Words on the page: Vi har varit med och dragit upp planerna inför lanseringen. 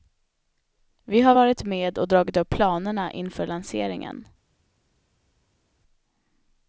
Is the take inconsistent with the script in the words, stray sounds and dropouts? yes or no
no